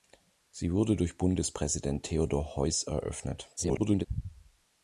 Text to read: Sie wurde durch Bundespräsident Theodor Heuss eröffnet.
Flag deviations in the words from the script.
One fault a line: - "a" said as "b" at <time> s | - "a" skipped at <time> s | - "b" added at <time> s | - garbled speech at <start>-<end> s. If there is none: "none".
- garbled speech at 3.6-4.1 s